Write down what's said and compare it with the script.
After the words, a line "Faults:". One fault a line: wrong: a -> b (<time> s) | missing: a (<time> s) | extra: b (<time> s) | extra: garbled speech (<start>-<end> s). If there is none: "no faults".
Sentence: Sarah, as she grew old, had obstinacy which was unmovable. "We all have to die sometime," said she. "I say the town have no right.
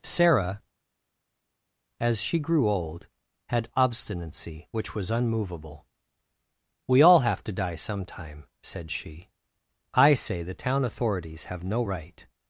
Sarah, as she grew old, had obstinacy which was unmovable. "We all have to die sometime," said she. "I say the town authorities have no right.
Faults:
extra: authorities (10.9 s)